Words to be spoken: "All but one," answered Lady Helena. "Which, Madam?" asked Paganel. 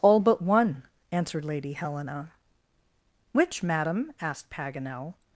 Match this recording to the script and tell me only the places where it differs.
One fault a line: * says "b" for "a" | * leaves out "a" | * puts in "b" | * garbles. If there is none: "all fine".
all fine